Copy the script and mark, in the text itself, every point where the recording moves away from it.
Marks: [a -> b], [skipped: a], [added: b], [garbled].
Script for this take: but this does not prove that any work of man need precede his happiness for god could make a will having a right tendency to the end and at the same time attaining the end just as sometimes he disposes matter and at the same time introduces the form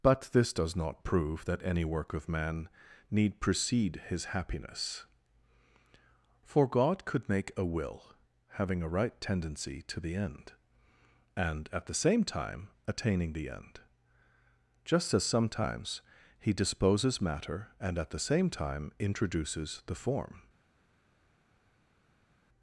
but this does not prove that any work of man need precede his happiness for god could make a will having a right tendency to the end and at the same time attaining the end just as sometimes he disposes matter and at the same time introduces the form